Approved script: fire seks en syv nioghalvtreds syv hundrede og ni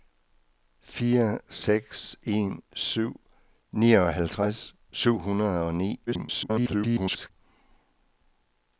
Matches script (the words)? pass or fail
fail